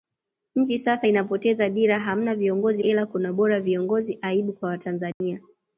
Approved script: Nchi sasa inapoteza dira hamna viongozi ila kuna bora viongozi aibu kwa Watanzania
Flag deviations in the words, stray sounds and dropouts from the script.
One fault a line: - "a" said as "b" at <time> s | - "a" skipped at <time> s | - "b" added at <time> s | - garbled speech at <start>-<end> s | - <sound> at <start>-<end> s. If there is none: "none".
- dropout at 5.1-5.2 s